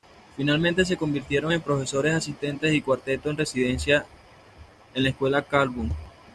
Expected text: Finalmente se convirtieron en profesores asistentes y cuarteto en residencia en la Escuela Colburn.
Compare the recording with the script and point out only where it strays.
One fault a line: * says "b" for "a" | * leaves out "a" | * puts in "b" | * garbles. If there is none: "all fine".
all fine